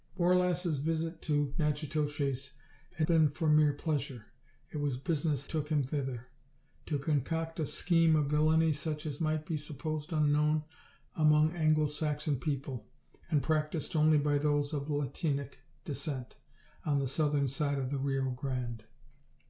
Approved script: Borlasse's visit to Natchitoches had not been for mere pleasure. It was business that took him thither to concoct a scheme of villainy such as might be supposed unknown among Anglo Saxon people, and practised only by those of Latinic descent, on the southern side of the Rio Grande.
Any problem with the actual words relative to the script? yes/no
yes